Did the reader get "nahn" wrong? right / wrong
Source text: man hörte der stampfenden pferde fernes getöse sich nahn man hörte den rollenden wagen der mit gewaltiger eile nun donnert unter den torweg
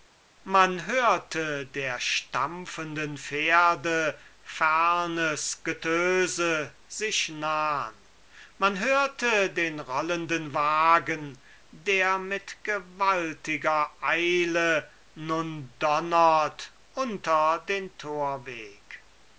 right